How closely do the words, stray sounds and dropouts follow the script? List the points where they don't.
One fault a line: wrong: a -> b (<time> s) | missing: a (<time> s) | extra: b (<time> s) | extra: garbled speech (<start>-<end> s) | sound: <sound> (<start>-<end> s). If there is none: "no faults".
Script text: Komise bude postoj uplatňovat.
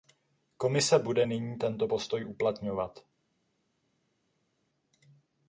extra: nyní tento (1.2 s)